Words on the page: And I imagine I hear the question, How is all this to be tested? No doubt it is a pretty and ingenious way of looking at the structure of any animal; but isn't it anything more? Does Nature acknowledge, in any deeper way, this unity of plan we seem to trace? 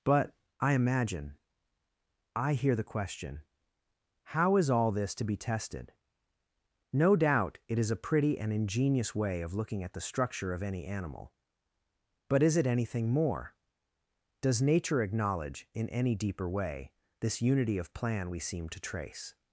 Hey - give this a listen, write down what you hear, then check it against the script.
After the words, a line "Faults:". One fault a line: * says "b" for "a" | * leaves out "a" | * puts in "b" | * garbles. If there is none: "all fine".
But I imagine I hear the question, How is all this to be tested? No doubt it is a pretty and ingenious way of looking at the structure of any animal; but is it anything more? Does Nature acknowledge, in any deeper way, this unity of plan we seem to trace?
Faults:
* says "But" for "And"
* says "is" for "isn't"